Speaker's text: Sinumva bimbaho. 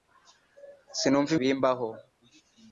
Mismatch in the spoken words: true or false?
false